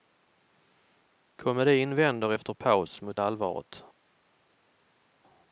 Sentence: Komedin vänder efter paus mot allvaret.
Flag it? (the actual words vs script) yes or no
no